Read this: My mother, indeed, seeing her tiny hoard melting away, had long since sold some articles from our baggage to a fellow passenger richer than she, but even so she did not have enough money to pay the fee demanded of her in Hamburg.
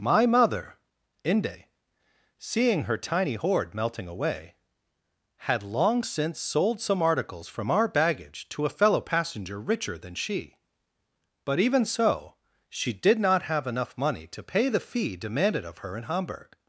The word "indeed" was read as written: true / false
false